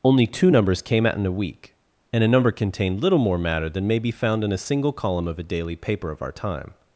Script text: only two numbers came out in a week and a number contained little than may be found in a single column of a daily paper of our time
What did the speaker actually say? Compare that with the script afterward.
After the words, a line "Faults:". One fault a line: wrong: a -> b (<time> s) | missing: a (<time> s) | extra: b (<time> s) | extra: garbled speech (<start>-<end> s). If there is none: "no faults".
only two numbers came out in a week and a number contained little more matter than may be found in a single column of a daily paper of our time
Faults:
extra: more matter (3.2 s)